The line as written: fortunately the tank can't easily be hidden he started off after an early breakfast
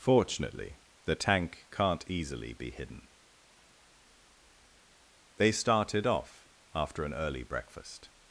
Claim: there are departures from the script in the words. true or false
true